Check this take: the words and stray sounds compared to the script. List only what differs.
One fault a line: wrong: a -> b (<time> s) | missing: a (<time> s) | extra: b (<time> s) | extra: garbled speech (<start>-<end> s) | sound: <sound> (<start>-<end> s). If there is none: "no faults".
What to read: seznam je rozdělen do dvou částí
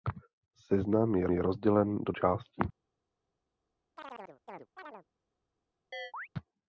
extra: je (1.3 s)
missing: dvou (2.1 s)
sound: chirp (4.0-5.1 s)
sound: chirp (5.9-6.3 s)